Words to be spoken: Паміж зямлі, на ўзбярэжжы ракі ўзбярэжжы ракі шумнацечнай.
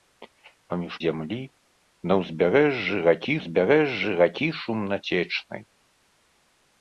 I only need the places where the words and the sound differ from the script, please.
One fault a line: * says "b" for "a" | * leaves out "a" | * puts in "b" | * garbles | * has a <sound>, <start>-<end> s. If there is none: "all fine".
all fine